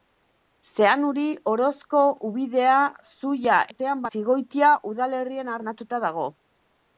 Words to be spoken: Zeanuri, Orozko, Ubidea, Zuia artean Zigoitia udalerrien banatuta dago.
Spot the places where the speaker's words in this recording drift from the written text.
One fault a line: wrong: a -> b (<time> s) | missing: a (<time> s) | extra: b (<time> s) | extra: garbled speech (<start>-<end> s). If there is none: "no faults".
no faults